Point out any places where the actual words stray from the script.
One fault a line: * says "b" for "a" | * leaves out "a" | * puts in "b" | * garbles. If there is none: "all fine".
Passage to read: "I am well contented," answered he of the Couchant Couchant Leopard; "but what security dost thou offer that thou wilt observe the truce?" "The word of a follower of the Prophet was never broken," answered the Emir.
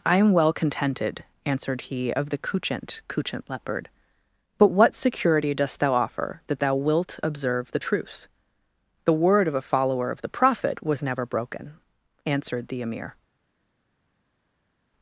all fine